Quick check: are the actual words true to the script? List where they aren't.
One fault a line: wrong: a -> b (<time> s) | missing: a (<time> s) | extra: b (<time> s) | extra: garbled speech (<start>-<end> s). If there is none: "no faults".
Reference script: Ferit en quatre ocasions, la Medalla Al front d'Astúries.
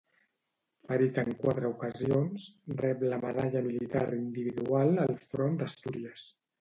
extra: rep (2.8 s)
extra: Militar Individual (3.7 s)